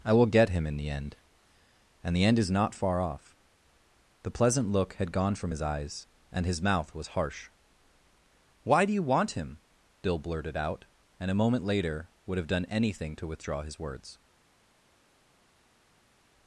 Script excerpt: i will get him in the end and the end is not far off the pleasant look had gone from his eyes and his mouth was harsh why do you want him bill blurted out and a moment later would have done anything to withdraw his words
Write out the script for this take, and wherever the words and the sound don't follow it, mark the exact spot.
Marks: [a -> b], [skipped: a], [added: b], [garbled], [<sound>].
i will get him in the end and the end is not far off the pleasant look had gone from his eyes and his mouth was harsh why do you want him bill blurted out and a moment later would have done anything to withdraw his words